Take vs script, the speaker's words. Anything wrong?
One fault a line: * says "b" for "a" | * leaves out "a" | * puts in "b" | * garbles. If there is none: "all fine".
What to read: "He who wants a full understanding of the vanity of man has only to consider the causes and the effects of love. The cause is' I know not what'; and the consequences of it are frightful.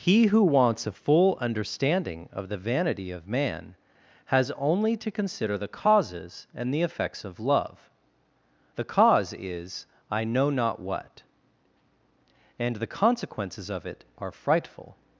all fine